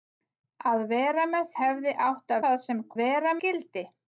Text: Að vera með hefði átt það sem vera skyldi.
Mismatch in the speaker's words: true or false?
false